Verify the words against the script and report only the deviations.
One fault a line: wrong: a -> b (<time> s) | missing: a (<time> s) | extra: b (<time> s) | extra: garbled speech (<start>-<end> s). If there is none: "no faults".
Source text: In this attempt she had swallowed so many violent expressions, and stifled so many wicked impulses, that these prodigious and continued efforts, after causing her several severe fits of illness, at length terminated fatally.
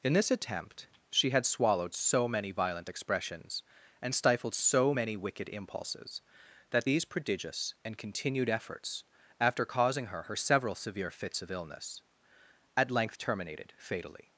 extra: her (10.2 s)